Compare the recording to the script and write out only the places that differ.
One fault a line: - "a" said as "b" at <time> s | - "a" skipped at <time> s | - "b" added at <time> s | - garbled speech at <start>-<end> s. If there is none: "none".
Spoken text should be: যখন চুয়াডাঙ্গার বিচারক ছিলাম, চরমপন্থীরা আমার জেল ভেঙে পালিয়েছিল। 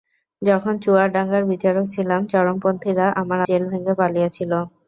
none